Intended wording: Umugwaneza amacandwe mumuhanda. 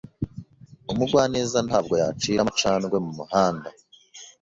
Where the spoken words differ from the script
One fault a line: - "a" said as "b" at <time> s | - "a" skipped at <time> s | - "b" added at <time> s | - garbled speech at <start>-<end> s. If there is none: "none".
- "ntabwo yacira" added at 1.7 s